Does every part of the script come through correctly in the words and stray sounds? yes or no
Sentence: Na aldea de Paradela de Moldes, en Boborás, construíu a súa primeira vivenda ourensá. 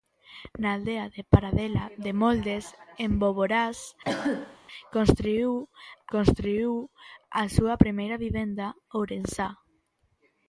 no